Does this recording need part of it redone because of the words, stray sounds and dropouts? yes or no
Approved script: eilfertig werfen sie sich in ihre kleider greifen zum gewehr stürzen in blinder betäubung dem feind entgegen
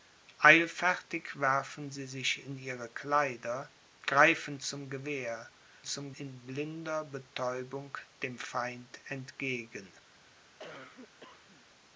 yes